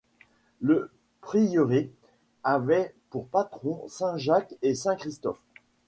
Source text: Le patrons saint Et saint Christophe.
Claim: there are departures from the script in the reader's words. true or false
true